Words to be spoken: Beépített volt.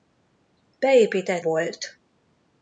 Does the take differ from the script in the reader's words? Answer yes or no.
no